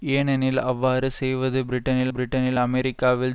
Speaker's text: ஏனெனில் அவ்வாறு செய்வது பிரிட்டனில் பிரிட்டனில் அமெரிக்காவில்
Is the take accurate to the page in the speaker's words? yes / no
yes